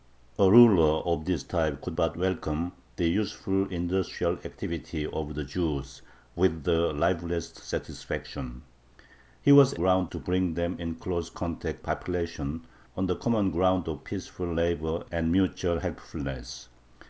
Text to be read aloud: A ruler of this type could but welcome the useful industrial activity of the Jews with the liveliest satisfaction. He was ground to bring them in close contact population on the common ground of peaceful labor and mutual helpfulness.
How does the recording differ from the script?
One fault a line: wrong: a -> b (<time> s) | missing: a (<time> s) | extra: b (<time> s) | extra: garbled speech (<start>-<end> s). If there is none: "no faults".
no faults